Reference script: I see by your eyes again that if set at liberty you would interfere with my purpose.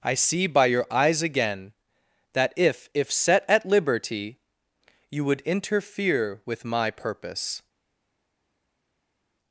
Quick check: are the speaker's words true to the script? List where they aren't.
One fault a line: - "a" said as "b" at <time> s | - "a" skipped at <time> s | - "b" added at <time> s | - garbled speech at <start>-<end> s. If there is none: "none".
- "if" added at 3.0 s